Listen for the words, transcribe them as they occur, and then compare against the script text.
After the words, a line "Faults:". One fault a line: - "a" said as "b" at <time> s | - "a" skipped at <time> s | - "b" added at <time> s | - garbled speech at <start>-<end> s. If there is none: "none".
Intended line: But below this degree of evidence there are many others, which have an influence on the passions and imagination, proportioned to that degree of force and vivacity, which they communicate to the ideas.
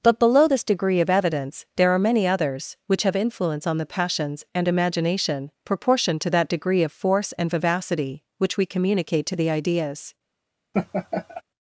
But below this degree of evidence there are many others, which have influence on the passions and imagination, proportioned to that degree of force and vivacity, which we communicate to the ideas.
Faults:
- "an" skipped at 3.2 s
- "they" said as "we" at 8.6 s